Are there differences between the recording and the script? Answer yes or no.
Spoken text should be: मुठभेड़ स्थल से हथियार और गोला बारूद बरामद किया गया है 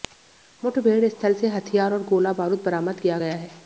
no